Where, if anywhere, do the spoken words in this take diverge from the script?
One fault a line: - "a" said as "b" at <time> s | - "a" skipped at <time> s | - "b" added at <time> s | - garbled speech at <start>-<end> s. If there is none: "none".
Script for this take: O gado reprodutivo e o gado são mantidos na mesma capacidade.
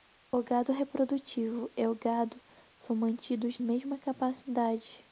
- "na" skipped at 3.6 s